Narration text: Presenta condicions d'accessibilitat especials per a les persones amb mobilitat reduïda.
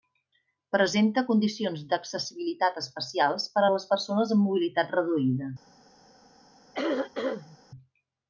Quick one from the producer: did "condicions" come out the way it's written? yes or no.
yes